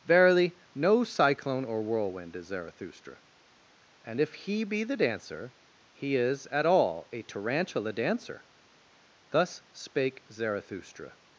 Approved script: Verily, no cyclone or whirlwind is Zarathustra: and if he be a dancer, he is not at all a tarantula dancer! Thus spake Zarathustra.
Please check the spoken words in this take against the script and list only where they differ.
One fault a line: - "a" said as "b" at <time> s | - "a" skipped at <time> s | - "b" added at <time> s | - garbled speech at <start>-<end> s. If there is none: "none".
- "a" said as "the" at 4.8 s
- "not" skipped at 6.5 s